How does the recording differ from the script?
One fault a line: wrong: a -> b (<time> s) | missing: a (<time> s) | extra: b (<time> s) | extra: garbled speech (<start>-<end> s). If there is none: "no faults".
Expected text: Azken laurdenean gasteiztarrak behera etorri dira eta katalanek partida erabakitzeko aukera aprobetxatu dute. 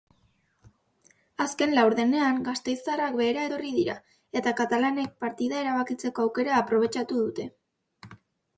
no faults